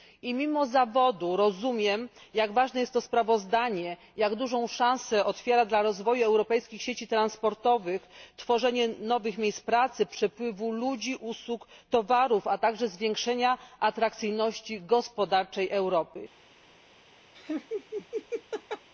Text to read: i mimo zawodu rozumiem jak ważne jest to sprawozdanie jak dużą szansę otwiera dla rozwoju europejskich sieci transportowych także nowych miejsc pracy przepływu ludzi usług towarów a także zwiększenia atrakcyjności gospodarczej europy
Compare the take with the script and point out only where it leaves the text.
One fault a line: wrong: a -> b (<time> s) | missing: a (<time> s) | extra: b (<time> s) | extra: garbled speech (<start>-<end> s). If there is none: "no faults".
wrong: także -> tworzenie (8.4 s)